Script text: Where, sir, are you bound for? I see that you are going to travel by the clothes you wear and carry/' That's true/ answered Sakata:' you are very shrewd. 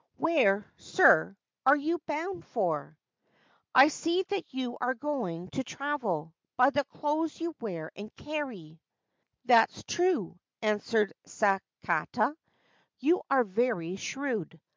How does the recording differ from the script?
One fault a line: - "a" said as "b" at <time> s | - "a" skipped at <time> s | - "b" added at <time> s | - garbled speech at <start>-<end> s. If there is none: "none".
none